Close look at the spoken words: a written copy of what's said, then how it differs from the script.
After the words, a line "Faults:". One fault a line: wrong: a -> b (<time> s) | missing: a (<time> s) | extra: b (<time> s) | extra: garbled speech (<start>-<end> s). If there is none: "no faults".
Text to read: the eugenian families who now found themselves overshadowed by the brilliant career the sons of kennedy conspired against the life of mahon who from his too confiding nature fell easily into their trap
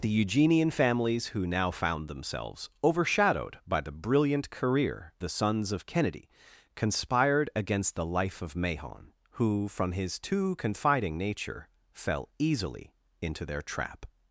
the eugenian families who now found themselves overshadowed by the brilliant career the sons of kennedy conspired against the life of mahon who from his too confiding nature fell easily into their trap
Faults:
no faults